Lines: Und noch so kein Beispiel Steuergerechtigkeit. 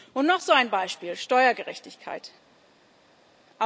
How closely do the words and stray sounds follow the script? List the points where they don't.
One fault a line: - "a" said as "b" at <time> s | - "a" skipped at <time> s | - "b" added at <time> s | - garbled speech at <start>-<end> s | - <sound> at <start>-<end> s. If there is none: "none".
- "kein" said as "ein" at 0.5 s